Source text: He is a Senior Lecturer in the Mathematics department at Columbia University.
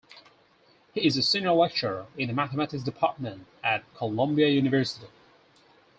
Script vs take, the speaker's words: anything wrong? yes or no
no